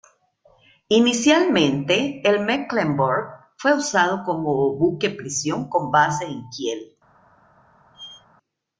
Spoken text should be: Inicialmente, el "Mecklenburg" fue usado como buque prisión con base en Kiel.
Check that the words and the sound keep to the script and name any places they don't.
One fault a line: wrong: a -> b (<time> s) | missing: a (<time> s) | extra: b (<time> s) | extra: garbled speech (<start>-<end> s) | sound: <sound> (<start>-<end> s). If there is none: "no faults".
sound: squeak (7.9-8.3 s)